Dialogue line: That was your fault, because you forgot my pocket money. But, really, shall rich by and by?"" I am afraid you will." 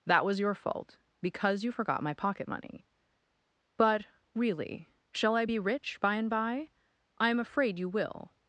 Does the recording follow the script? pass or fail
fail